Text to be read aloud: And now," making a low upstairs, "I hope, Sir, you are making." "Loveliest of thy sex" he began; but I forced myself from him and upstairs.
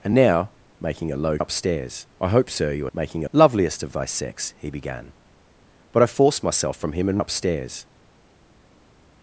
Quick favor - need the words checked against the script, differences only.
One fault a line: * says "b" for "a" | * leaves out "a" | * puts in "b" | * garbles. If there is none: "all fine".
all fine